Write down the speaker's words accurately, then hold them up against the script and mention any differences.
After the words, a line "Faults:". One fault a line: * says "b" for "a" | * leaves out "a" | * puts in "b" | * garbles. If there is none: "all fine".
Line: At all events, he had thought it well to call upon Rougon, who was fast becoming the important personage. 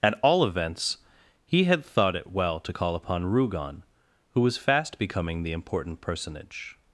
At all events, he had thought it well to call upon Rougon, who was fast becoming the important personage.
Faults:
all fine